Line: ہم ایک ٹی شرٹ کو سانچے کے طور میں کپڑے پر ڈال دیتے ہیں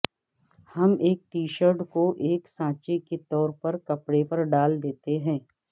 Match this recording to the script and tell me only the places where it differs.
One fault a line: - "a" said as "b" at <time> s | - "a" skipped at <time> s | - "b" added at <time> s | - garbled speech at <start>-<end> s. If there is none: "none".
- "ایک" added at 2.2 s
- "میں" said as "پر" at 3.6 s